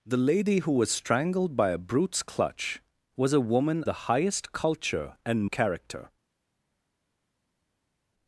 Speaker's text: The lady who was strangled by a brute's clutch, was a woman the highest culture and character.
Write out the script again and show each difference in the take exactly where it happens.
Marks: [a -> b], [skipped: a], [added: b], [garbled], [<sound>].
The lady who was strangled by a brute's clutch, was a woman the highest culture and character.